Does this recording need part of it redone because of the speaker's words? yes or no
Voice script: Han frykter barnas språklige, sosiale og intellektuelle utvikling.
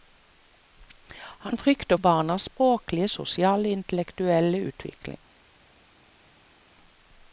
no